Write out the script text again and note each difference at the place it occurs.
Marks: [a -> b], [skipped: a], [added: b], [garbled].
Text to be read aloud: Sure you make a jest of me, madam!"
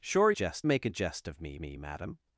Sure [you -> jest] make a jest of me, [added: me] madam!"